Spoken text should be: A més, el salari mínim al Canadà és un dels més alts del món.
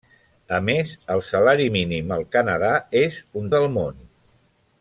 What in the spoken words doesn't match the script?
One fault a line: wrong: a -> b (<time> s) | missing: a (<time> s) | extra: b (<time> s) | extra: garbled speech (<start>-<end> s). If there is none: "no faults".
missing: dels més alts (3.5 s)